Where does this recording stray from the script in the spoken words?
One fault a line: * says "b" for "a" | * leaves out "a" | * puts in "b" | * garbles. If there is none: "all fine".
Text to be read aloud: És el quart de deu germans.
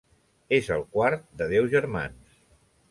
all fine